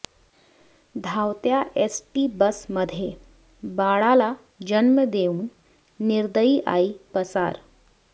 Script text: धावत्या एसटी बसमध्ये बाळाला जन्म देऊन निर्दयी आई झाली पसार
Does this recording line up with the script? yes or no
no